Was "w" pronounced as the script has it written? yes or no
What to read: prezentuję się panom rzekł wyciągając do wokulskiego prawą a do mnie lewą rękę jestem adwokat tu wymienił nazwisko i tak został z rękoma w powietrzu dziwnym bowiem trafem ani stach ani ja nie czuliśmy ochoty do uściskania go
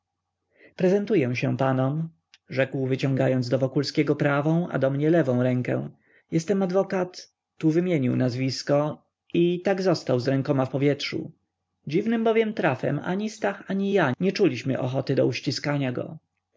yes